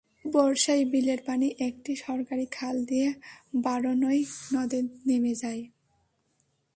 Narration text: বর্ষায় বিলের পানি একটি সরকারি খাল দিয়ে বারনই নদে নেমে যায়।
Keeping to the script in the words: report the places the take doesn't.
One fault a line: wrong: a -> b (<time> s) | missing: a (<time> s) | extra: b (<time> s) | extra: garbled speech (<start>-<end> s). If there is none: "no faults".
no faults